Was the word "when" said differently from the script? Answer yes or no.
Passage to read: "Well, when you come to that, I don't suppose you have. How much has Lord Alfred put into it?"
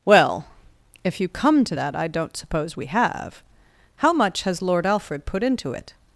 yes